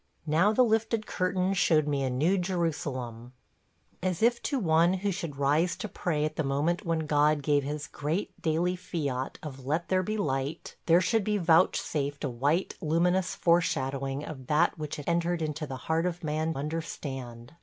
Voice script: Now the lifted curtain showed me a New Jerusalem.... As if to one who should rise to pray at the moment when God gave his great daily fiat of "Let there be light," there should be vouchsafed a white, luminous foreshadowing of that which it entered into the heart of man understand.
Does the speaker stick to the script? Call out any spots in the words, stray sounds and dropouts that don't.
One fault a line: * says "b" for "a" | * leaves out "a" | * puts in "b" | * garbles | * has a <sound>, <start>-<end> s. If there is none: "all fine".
all fine